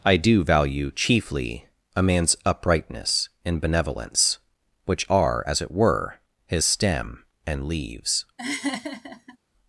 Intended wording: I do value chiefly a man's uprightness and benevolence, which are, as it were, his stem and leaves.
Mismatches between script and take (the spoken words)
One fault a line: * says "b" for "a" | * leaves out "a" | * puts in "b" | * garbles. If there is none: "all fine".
all fine